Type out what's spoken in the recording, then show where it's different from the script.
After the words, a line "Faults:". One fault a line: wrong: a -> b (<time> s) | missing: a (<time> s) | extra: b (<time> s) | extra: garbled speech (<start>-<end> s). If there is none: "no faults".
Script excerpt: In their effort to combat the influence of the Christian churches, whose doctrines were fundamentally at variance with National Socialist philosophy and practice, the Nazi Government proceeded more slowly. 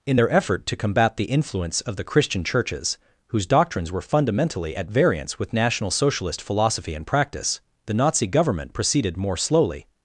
In their effort to combat the influence of the Christian churches, whose doctrines were fundamentally at variance with National Socialist philosophy and practice, the Nazi Government proceeded more slowly.
Faults:
no faults